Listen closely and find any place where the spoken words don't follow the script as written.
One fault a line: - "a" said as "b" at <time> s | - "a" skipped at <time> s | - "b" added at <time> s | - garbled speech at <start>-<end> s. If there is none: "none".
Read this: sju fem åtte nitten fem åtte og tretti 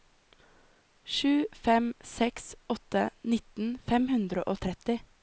- "seks" added at 2.1 s
- "åtte" said as "hundre" at 4.1 s